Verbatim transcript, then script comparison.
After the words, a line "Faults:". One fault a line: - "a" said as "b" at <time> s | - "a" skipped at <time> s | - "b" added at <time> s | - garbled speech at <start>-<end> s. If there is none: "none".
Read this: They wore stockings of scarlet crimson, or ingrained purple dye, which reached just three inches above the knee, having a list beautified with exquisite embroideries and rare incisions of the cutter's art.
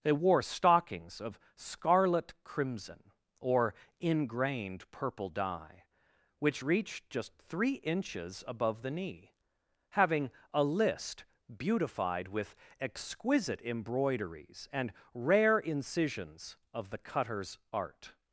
They wore stockings of scarlet crimson, or ingrained purple dye, which reached just three inches above the knee, having a list beautified with exquisite embroideries and rare incisions of the cutter's art.
Faults:
none